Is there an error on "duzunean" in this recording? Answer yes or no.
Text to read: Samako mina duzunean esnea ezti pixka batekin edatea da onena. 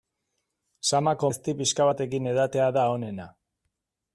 yes